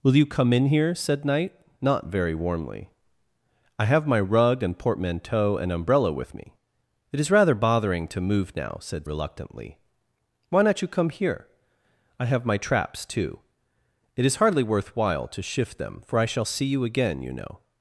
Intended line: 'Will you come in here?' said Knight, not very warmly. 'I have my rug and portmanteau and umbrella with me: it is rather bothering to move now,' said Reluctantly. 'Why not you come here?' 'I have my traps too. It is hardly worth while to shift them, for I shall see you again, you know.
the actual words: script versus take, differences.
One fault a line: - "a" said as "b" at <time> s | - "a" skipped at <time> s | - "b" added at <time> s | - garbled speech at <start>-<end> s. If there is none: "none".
none